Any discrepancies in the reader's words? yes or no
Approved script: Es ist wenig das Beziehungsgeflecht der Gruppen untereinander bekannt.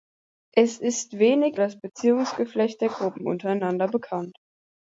no